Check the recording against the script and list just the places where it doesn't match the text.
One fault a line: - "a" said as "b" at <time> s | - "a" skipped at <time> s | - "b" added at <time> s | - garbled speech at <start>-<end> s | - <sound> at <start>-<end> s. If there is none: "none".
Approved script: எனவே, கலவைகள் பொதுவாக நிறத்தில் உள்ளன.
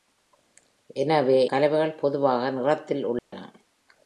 - dropout at 3.2-3.3 s